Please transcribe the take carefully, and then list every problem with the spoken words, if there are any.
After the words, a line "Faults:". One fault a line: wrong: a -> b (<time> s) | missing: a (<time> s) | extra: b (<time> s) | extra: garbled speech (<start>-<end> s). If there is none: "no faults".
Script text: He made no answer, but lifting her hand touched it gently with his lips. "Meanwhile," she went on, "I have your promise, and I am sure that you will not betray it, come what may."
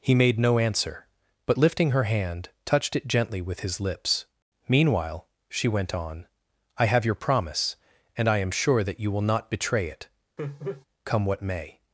He made no answer, but lifting her hand touched it gently with his lips. "Meanwhile," she went on, "I have your promise, and I am sure that you will not betray it, come what may."
Faults:
no faults